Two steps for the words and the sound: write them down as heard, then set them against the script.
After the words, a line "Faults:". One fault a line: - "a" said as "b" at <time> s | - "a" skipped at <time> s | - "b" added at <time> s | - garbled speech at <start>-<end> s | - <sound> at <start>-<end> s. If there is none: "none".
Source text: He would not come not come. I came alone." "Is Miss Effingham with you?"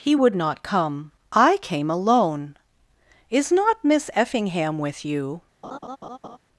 He would not come. I came alone." "Is not Miss Effingham with you?"
Faults:
- "not come" skipped at 1.1 s
- "not" added at 3.5 s
- laugh at 5.6-6.4 s